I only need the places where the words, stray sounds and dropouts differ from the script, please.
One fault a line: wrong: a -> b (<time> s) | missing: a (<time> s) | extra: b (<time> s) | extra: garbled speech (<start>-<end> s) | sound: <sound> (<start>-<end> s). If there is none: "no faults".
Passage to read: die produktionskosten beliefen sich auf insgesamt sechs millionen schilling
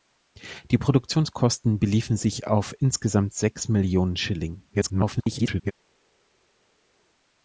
extra: garbled speech (4.7-5.7 s)